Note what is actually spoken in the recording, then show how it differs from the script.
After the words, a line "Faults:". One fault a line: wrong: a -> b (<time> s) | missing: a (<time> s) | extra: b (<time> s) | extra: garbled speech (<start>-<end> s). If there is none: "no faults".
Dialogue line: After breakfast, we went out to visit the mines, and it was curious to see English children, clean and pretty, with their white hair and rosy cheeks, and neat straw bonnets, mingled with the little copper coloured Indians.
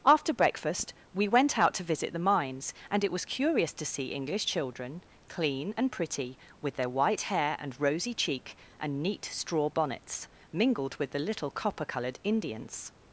After breakfast, we went out to visit the mines, and it was curious to see English children, clean and pretty, with their white hair and rosy cheek, and neat straw bonnets, mingled with the little copper coloured Indians.
Faults:
wrong: cheeks -> cheek (8.1 s)